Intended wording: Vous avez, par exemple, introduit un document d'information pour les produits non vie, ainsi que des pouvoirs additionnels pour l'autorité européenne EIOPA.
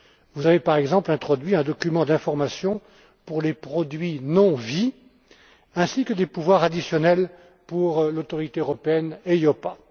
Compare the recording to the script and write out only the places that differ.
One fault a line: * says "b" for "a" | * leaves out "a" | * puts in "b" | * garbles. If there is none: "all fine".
all fine